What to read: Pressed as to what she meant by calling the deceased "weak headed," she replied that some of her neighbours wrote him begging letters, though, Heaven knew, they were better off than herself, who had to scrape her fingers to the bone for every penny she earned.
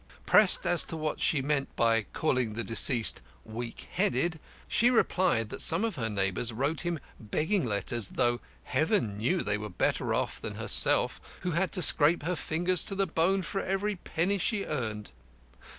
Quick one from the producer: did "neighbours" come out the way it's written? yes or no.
yes